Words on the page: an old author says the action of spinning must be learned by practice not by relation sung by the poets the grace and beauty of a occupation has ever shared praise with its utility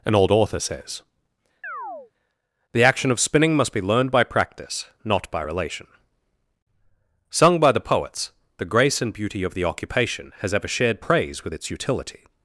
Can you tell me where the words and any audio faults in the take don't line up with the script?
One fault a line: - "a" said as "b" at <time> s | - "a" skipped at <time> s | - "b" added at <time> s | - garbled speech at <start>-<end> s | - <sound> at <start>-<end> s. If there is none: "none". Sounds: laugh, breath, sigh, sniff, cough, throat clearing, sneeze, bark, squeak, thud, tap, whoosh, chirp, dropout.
- chirp at 1.6-2.1 s
- "a" said as "the" at 9.5 s